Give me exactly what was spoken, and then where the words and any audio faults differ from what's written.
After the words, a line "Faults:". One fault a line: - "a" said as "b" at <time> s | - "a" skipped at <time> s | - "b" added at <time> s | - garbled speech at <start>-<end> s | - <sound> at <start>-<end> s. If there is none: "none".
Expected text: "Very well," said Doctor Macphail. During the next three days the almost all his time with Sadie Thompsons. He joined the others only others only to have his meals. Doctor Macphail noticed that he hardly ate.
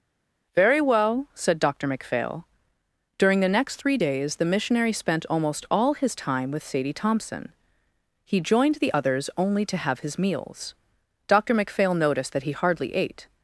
"Very well," said Doctor Macphail. During the next three days the missionary spent almost all his time with Sadie Thompson. He joined the others only to have his meals. Doctor Macphail noticed that he hardly ate.
Faults:
- "missionary spent" added at 4.4 s
- "Thompsons" said as "Thompson" at 6.9 s
- "others only" skipped at 9.6 s